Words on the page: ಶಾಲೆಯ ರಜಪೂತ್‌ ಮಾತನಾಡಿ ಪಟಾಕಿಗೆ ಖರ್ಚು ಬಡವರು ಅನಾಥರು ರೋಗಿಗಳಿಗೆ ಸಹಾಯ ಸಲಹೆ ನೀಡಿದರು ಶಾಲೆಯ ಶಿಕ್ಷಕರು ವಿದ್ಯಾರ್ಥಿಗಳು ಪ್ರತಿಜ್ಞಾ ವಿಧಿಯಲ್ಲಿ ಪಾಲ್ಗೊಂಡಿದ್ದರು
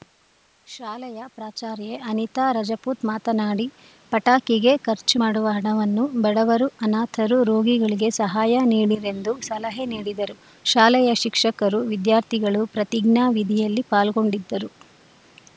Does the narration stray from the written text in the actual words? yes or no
yes